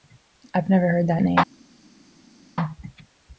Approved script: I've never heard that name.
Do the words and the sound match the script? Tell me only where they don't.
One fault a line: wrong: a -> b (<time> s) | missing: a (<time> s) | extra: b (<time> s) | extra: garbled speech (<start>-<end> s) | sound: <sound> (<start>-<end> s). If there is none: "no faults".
no faults